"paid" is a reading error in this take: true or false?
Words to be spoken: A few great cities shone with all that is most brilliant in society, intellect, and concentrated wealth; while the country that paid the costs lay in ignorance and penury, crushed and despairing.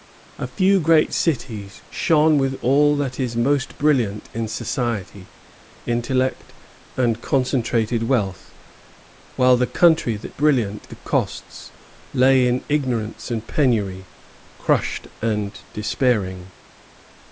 true